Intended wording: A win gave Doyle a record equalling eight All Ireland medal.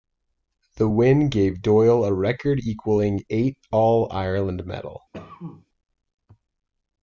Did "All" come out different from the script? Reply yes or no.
no